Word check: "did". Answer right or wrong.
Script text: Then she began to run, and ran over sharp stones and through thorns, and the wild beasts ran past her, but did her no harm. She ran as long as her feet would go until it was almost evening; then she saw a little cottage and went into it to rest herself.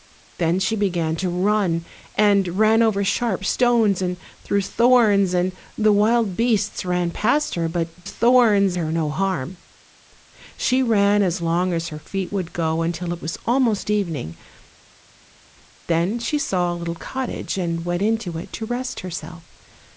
wrong